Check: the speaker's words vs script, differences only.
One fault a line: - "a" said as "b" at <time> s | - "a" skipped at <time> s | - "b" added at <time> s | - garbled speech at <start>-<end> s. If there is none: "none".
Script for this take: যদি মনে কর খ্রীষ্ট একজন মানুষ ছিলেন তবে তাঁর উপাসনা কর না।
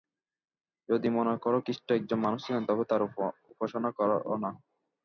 none